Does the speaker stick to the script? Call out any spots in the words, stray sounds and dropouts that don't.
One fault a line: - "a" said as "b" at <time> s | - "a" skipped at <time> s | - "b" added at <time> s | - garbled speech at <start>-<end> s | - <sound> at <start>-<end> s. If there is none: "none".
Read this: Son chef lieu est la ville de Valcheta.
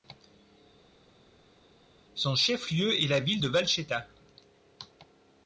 none